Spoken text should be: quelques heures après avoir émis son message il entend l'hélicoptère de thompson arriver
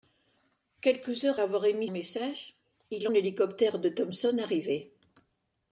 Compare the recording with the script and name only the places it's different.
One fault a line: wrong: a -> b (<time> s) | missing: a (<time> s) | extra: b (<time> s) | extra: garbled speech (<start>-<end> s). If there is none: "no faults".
missing: après (1.4 s)
missing: son (1.9 s)
missing: entend (3.1 s)